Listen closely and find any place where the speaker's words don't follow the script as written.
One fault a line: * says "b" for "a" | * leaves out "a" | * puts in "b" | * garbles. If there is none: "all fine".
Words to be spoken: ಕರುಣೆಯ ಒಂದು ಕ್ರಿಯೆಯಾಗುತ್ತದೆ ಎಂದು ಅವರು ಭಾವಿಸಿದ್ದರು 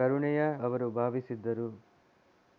* leaves out "ಒಂದು ಕ್ರಿಯೆಯಾಗುತ್ತದೆ ಎಂದು"